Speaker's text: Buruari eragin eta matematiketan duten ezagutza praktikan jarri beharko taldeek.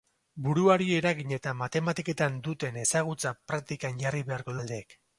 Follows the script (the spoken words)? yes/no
yes